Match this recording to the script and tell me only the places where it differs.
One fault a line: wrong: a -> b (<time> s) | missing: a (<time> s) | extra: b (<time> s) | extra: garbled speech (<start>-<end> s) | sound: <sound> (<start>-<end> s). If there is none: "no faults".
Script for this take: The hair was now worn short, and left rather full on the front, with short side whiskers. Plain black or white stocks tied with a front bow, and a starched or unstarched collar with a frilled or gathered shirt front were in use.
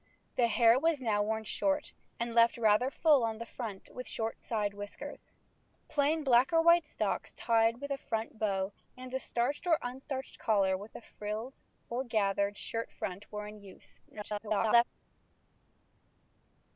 extra: garbled speech (14.1-14.8 s)